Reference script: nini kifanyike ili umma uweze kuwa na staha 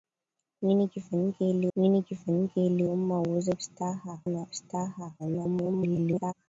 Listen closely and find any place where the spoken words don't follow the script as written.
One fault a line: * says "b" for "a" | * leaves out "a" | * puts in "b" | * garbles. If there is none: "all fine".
* puts in "nini kifanyike ili"
* says "staha" for "kuwa"
* garbles